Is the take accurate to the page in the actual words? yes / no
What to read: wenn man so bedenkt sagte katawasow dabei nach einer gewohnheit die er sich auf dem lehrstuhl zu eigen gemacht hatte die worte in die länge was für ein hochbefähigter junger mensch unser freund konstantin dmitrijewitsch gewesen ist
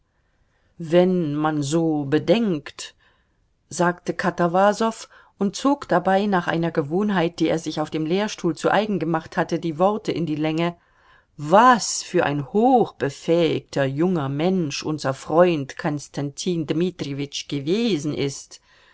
no